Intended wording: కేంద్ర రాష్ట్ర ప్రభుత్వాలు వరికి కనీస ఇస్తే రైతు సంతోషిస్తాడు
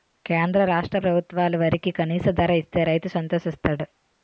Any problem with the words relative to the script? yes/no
yes